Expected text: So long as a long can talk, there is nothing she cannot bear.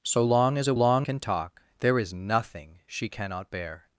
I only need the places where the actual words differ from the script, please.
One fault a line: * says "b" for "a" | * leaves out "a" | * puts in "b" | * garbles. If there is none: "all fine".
all fine